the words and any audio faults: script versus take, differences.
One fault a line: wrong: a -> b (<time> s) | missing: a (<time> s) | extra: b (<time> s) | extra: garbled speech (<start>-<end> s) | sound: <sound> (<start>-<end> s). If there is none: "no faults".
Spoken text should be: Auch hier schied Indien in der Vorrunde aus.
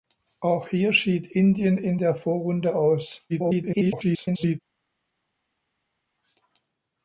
extra: garbled speech (3.3-4.6 s)